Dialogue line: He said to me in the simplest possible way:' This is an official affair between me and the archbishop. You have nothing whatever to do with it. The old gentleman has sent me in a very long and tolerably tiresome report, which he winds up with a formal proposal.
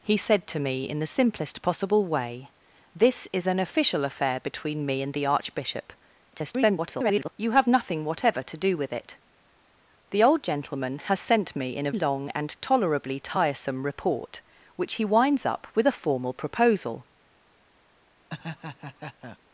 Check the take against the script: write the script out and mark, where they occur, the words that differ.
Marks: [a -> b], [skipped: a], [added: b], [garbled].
He said to me in the simplest possible way:' This is an official affair between me and the archbishop. [garbled] You have nothing whatever to do with it. The old gentleman has sent me in a [skipped: very] long and tolerably tiresome report, which he winds up with a formal proposal.